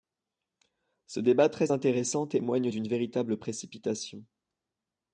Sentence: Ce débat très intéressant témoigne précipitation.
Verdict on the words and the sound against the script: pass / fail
fail